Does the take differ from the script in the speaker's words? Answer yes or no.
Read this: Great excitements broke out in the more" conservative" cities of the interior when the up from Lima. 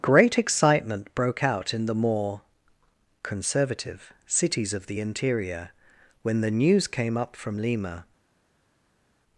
yes